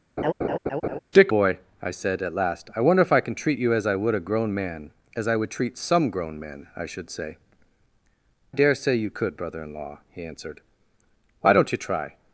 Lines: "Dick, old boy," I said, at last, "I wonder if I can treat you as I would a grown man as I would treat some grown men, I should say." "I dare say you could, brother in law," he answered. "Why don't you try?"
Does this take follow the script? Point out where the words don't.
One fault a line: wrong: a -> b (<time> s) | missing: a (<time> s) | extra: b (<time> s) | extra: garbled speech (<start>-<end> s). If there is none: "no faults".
missing: old (1.3 s)
missing: I (7.4 s)